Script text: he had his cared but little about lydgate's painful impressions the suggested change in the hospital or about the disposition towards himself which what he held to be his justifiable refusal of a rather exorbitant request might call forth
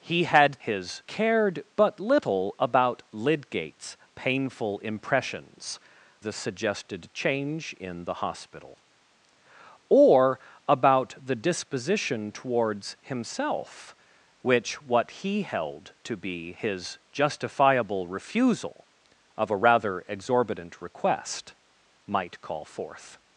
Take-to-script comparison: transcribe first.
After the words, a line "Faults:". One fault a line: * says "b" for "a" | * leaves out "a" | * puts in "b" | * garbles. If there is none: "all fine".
he had his cared but little about lydgate's painful impressions the suggested change in the hospital or about the disposition towards himself which what he held to be his justifiable refusal of a rather exorbitant request might call forth
Faults:
all fine